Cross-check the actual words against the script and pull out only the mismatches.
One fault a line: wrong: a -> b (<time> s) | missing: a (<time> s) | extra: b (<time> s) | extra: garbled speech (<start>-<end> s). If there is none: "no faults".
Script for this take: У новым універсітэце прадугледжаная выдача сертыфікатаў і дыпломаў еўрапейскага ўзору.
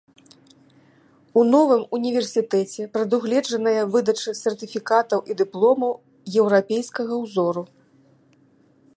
no faults